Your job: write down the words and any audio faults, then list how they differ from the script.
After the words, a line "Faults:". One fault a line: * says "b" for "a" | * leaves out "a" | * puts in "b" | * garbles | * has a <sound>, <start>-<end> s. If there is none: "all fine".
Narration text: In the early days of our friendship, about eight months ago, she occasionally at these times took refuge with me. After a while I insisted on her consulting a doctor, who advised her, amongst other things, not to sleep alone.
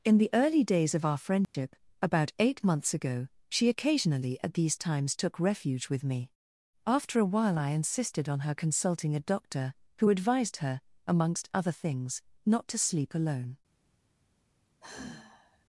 In the early days of our friendship, about eight months ago, she occasionally at these times took refuge with me. After a while I insisted on her consulting a doctor, who advised her, amongst other things, not to sleep alone.
Faults:
* has a dropout, 1.4-1.5 s
* has a sigh, 14.8-15.7 s